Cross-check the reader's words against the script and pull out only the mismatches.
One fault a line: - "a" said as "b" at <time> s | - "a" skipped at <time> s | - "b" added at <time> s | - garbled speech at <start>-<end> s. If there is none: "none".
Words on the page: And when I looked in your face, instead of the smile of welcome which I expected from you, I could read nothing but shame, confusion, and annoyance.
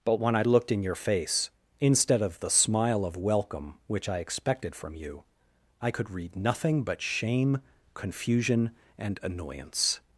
- "And" said as "But" at 0.0 s